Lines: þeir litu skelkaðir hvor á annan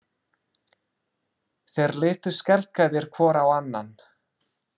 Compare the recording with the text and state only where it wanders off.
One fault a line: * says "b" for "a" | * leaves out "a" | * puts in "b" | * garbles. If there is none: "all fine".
all fine